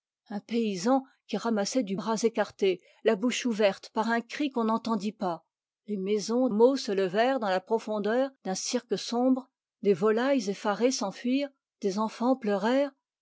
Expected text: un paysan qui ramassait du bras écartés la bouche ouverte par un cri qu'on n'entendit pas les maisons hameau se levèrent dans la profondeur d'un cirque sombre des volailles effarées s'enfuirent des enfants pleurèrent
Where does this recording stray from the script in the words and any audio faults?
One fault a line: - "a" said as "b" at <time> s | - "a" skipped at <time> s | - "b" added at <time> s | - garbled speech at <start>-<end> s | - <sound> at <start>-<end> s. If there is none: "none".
none